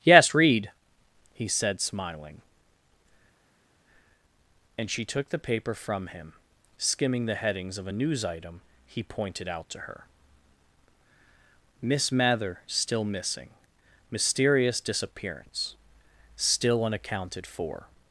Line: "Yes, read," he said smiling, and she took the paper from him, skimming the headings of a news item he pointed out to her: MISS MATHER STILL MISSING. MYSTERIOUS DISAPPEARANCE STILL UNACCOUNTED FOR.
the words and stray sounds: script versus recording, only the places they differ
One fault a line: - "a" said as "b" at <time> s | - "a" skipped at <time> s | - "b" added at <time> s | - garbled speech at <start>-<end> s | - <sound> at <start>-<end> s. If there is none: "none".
none